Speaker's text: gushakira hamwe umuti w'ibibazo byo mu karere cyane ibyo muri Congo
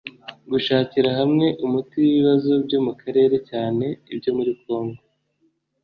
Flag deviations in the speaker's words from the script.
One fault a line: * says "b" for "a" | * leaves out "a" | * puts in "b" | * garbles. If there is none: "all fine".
all fine